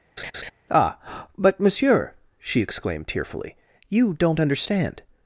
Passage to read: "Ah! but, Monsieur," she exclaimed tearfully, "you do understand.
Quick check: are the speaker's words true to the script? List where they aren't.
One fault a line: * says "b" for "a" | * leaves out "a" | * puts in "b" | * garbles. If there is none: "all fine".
* says "don't" for "do"